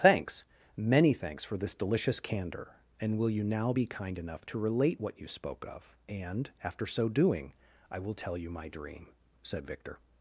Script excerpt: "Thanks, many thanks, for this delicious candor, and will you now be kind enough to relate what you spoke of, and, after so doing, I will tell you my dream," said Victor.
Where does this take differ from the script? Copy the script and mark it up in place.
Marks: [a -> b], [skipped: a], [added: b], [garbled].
"Thanks, many thanks, for this delicious candor, and will you now be kind enough to relate what you spoke of, and, after so doing, I will tell you my dream," said Victor.